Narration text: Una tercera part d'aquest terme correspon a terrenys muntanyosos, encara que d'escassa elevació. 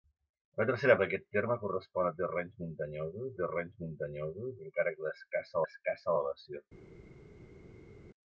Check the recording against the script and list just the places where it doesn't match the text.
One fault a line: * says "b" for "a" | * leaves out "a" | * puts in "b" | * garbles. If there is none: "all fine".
* leaves out "part"
* puts in "terrenys muntanyosos"
* puts in "d'escassa"